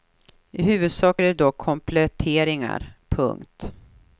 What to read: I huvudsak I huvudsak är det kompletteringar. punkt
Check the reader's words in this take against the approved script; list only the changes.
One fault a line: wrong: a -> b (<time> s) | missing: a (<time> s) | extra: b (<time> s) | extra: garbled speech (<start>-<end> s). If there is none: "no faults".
missing: I huvudsak (1.2 s)
extra: dock (1.3 s)